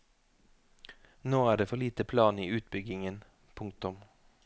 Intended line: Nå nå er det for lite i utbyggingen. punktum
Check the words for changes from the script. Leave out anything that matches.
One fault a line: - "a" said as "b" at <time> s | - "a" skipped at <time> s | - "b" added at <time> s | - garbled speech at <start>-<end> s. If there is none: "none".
- "nå" skipped at 1.4 s
- "plan" added at 2.0 s